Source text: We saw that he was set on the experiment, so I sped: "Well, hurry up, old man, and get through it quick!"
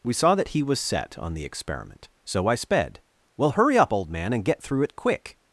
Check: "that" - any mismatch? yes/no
no